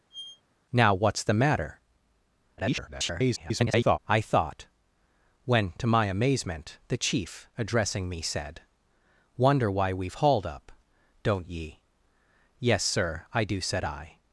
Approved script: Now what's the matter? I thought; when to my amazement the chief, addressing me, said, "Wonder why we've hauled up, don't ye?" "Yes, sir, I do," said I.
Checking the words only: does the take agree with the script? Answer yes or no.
no